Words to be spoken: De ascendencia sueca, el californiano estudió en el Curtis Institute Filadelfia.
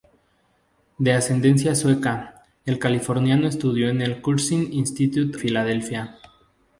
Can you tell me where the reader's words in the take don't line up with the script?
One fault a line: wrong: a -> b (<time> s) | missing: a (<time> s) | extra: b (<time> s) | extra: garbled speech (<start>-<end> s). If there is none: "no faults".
no faults